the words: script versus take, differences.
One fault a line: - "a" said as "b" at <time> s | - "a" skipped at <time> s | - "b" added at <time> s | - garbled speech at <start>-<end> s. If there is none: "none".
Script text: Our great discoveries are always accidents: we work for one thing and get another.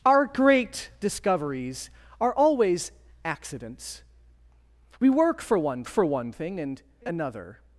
- "for one" added at 5.9 s
- "get" skipped at 6.8 s